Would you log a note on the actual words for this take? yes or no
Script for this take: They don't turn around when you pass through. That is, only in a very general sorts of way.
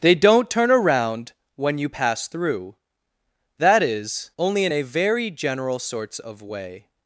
no